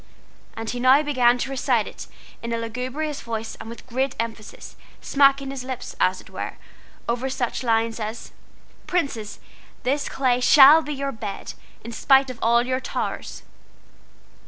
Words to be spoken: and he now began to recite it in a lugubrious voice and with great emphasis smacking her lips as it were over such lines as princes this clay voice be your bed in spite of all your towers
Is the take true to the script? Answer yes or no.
no